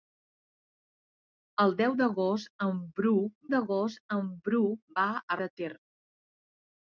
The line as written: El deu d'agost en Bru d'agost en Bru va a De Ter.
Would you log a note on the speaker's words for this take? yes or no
no